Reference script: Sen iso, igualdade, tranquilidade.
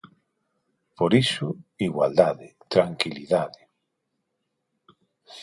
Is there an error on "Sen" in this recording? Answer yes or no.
yes